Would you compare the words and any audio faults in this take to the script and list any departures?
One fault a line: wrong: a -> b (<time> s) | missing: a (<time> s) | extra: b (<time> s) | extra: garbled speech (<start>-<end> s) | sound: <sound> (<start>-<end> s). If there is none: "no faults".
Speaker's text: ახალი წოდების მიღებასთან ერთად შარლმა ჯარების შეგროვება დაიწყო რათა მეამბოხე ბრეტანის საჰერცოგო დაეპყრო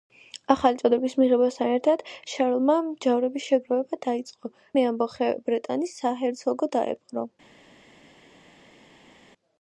missing: რათა (4.5 s)